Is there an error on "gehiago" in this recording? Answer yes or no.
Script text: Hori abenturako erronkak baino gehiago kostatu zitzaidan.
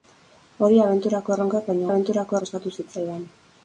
yes